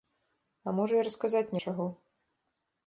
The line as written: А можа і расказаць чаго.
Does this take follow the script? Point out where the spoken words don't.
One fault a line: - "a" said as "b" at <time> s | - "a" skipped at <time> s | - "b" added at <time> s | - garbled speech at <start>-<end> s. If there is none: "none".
none